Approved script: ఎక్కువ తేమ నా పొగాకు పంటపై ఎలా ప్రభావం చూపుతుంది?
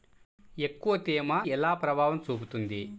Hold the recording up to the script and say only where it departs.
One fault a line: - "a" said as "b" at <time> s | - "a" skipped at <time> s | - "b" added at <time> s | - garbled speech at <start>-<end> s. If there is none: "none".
- "నా పొగాకు పంటపై" skipped at 1.4 s